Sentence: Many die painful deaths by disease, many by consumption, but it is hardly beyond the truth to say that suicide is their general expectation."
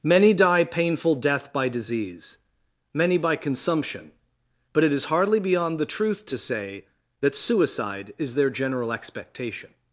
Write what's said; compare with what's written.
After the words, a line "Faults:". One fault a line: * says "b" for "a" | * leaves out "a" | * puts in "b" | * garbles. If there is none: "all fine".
Many die painful death by disease, many by consumption, but it is hardly beyond the truth to say that suicide is their general expectation."
Faults:
* says "death" for "deaths"